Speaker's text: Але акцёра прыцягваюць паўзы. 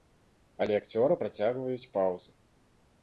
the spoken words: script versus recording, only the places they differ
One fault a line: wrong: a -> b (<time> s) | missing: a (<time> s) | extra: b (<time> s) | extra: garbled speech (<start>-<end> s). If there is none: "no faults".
no faults